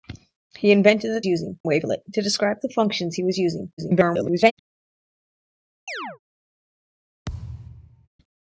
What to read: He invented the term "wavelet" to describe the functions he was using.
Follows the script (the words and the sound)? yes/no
no